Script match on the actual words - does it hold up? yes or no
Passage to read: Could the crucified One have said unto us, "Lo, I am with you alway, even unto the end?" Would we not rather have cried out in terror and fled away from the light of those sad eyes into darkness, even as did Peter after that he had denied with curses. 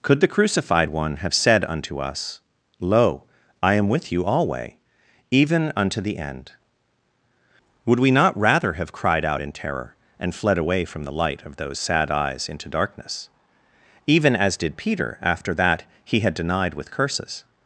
yes